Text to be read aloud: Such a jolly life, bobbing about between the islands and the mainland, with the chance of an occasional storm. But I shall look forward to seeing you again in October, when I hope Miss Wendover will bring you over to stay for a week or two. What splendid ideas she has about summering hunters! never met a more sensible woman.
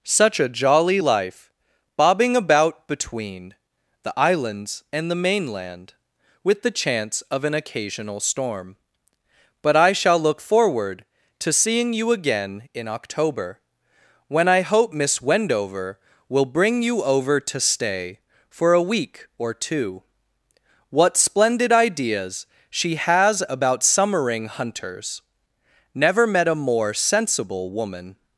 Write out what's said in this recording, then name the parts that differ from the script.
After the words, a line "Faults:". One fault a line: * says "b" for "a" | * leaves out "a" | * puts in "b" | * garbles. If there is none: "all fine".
Such a jolly life, bobbing about between the islands and the mainland, with the chance of an occasional storm. But I shall look forward to seeing you again in October, when I hope Miss Wendover will bring you over to stay for a week or two. What splendid ideas she has about summering hunters! never met a more sensible woman.
Faults:
all fine